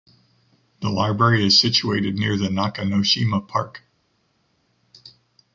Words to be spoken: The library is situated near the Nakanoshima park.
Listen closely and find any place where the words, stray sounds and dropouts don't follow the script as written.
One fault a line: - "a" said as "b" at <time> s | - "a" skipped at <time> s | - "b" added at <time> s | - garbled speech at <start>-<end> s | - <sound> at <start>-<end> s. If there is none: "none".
none